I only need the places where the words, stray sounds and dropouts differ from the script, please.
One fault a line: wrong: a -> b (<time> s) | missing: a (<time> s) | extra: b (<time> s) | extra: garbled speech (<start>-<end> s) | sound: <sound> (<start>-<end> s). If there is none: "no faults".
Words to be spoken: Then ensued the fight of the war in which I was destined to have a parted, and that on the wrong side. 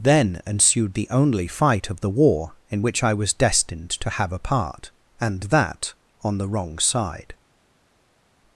extra: only (1.1 s)
wrong: parted -> part (4.4 s)